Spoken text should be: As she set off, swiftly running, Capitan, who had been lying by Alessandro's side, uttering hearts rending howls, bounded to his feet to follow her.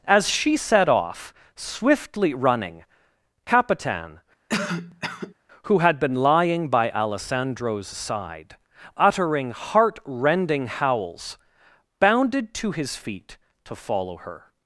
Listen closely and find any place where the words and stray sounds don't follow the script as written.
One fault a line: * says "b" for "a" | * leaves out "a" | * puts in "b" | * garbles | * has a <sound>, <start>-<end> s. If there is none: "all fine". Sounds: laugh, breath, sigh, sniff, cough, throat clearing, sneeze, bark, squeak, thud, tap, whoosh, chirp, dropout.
* has a cough, 4.5-5.3 s
* says "heart" for "hearts"